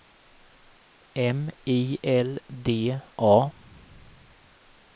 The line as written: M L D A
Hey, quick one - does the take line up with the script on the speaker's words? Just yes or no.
no